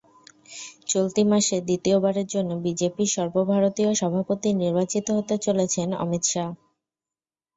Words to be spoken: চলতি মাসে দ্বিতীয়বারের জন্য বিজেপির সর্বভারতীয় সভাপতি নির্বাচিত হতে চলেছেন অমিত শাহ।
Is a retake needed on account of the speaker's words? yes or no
no